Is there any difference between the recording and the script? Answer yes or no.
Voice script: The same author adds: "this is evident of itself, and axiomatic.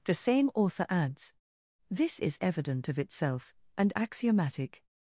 no